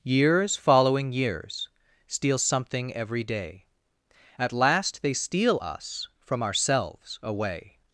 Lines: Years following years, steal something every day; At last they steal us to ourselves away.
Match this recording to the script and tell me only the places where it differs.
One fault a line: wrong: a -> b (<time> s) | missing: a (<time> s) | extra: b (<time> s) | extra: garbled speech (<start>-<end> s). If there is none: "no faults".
wrong: to -> from (6.2 s)